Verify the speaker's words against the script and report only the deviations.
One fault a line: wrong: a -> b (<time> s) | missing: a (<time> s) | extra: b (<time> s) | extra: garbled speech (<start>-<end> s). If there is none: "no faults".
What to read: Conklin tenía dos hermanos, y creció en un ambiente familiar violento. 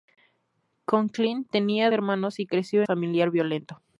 missing: dos (1.9 s)
missing: en un ambiente (2.8 s)